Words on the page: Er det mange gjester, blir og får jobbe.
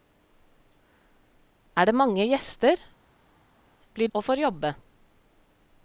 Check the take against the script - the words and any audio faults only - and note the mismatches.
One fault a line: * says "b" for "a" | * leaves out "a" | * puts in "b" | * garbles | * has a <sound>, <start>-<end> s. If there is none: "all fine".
all fine